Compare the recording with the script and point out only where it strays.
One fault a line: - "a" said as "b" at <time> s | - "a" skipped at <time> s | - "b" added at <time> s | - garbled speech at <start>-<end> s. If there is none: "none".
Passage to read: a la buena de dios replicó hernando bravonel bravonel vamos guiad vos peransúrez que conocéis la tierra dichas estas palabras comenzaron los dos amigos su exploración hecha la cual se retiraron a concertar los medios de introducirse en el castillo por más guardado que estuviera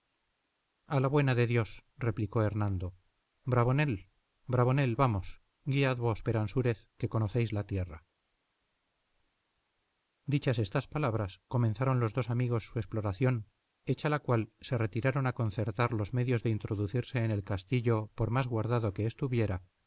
none